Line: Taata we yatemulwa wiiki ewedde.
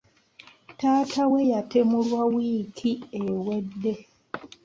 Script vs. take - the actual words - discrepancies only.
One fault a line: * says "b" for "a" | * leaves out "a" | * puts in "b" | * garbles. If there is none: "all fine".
all fine